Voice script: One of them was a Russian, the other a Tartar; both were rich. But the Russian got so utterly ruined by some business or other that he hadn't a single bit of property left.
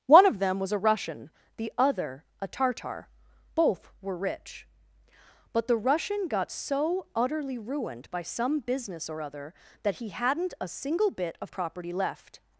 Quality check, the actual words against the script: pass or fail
pass